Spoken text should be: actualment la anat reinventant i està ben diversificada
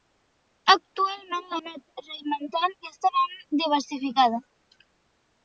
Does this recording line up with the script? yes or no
yes